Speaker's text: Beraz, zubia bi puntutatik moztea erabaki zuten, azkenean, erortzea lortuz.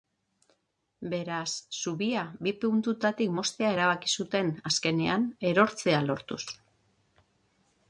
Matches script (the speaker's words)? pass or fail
pass